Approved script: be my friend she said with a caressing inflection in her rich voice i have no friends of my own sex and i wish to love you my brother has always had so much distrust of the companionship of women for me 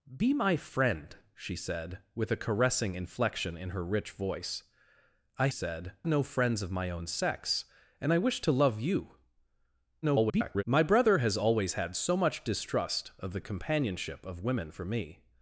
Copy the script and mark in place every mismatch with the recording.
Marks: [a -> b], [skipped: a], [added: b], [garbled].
be my friend she said with a caressing inflection in her rich voice i [have -> said] no friends of my own sex and i wish to love you [garbled] my brother has always had so much distrust of the companionship of women for me